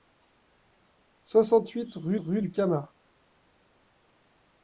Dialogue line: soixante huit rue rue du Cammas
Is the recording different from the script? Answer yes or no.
no